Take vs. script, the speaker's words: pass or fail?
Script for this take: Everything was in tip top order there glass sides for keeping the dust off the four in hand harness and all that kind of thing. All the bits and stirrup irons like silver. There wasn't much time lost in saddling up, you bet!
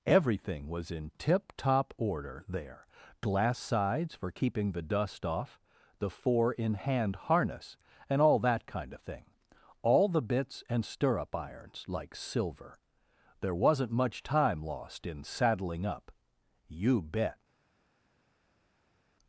pass